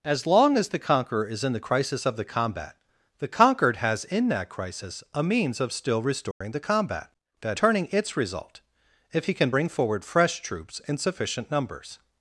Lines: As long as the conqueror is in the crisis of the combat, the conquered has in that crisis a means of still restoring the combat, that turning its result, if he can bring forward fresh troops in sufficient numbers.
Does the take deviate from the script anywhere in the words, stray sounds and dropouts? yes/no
yes